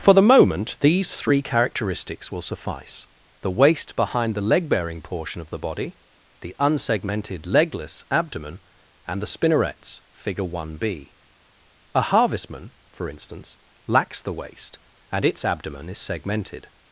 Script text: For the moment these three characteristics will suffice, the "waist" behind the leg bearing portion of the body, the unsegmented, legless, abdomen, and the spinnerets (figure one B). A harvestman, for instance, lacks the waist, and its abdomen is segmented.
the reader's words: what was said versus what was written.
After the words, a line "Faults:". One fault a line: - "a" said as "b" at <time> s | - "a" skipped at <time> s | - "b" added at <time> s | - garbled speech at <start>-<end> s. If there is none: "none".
For the moment these three characteristics will suffice, the "waist" behind the leg bearing portion of the body, the unsegmented, legless, abdomen, and the spinnerets (figure one B). A harvestman, for instance, lacks the waist, and its abdomen is segmented.
Faults:
none